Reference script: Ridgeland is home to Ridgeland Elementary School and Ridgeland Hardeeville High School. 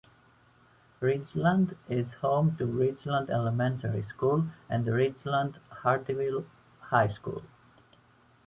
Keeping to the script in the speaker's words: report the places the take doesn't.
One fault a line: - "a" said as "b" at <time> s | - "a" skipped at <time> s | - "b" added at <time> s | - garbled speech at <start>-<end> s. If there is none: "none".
none